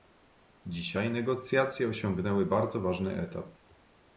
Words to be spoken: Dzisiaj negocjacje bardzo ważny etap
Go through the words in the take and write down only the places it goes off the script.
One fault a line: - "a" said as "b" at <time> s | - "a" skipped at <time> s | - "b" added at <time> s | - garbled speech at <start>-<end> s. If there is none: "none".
- "osiągnęły" added at 1.9 s